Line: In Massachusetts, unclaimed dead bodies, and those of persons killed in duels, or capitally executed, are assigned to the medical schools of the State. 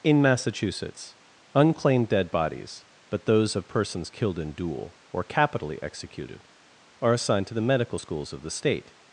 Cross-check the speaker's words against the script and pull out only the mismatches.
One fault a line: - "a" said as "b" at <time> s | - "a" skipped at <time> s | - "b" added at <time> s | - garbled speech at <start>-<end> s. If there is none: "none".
- "and" said as "but" at 3.1 s
- "duels" said as "duel" at 4.5 s